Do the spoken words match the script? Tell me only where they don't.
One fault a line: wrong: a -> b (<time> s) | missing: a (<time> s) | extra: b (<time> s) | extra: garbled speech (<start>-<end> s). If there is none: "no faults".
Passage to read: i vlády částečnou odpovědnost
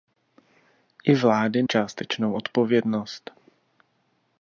no faults